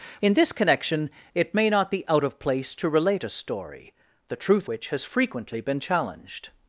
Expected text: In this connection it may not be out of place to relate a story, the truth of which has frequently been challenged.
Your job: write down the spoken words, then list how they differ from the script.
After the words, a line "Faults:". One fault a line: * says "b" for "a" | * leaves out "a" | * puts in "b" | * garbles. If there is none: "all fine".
In this connection it may not be out of place to relate a story, the truth which has frequently been challenged.
Faults:
* leaves out "of"